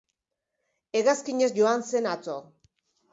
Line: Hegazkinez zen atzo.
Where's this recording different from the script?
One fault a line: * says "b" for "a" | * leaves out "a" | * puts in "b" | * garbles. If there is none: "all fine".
* puts in "joan"